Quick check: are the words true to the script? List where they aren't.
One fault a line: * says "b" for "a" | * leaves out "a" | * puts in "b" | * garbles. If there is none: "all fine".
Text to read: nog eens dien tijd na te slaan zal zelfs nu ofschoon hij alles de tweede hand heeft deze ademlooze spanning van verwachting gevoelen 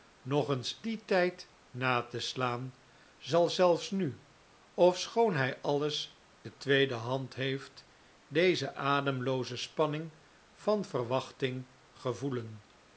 all fine